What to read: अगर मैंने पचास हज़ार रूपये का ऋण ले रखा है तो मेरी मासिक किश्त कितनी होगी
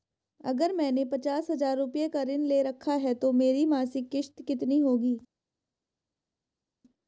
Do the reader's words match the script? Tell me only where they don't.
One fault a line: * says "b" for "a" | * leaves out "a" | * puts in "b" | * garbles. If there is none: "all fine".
all fine